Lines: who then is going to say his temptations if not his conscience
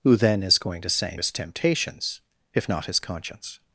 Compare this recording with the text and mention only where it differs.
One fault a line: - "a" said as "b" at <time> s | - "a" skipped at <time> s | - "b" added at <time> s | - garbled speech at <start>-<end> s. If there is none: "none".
none